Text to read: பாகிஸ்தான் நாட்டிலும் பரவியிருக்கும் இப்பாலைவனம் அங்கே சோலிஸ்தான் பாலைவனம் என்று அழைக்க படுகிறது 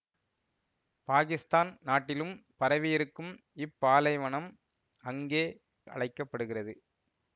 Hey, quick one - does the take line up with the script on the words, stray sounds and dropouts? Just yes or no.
no